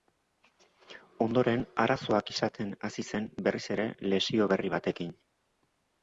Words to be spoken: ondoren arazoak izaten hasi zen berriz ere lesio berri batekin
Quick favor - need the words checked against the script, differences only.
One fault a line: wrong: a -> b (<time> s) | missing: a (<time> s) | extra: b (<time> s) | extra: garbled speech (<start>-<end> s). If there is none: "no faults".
no faults